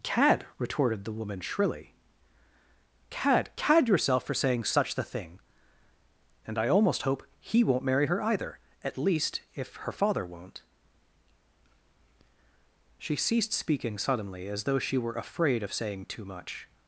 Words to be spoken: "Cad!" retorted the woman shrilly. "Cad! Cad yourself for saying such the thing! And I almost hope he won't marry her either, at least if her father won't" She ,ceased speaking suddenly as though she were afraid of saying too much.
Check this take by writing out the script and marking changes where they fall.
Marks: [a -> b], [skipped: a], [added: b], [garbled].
"Cad!" retorted the woman shrilly. "Cad! Cad yourself for saying such the thing! And I almost hope he won't marry her either, at least if her father won't" She ,ceased speaking suddenly as though she were afraid of saying too much.